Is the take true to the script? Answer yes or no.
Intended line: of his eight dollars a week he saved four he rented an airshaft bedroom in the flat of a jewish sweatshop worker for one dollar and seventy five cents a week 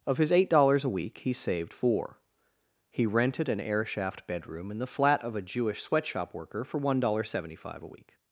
yes